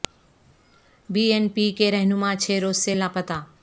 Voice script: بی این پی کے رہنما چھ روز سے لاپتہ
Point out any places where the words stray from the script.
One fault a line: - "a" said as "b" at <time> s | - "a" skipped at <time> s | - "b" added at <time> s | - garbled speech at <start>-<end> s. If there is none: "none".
none